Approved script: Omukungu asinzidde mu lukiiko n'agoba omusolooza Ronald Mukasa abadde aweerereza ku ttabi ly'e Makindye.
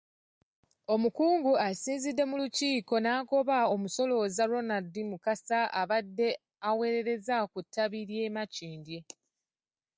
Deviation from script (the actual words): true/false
false